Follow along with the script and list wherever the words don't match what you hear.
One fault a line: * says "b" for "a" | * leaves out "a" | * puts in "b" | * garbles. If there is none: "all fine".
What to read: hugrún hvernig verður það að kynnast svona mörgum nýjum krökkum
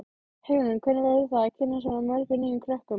all fine